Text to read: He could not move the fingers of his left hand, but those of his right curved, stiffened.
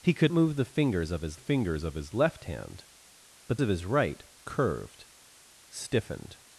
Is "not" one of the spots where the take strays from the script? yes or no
yes